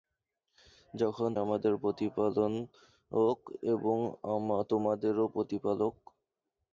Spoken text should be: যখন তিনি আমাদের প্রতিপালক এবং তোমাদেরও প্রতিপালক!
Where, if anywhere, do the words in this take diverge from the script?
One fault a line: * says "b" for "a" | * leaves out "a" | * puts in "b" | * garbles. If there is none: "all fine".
* leaves out "তিনি"